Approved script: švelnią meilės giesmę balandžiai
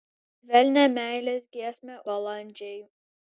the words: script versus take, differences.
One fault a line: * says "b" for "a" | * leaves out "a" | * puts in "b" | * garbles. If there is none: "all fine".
all fine